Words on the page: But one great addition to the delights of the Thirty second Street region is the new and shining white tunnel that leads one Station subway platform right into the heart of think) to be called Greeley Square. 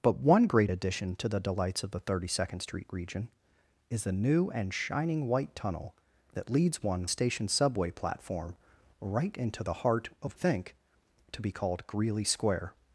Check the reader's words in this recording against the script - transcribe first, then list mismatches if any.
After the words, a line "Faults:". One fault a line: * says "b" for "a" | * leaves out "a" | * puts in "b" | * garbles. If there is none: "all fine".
But one great addition to the delights of the Thirty second Street region is the new and shining white tunnel that leads one Station subway platform right into the heart of think) to be called Greeley Square.
Faults:
all fine